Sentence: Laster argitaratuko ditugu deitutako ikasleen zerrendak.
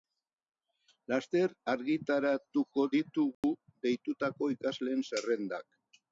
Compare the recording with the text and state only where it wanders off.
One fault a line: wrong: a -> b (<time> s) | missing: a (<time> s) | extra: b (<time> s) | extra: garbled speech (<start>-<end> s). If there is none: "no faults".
no faults